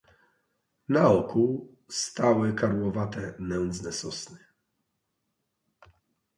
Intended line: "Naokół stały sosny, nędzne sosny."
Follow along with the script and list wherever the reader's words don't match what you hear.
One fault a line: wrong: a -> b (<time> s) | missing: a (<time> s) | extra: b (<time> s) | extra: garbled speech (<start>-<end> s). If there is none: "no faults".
wrong: sosny -> karłowate (2.5 s)